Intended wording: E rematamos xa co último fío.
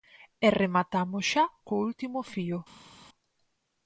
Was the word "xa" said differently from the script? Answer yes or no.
no